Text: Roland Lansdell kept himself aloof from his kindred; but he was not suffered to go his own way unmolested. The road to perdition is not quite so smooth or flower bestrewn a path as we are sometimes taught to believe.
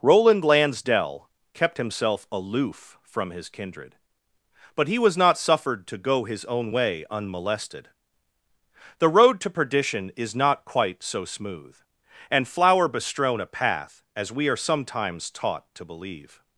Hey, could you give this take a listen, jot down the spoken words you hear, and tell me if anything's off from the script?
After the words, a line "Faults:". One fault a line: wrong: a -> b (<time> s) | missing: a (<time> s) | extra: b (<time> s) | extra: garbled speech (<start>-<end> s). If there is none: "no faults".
Roland Lansdell kept himself aloof from his kindred; but he was not suffered to go his own way unmolested. The road to perdition is not quite so smooth and flower bestrewn a path as we are sometimes taught to believe.
Faults:
wrong: or -> and (12.3 s)